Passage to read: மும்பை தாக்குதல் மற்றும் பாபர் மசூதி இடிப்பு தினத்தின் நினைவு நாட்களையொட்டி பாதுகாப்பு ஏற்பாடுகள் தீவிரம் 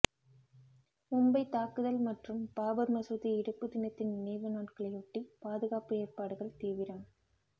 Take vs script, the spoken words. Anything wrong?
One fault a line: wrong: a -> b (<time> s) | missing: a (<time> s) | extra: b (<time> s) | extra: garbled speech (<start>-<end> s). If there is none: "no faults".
no faults